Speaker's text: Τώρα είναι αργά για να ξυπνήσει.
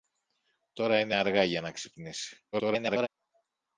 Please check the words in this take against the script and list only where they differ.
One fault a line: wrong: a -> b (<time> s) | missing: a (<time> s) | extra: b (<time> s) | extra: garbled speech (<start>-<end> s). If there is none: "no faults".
extra: garbled speech (2.5-3.1 s)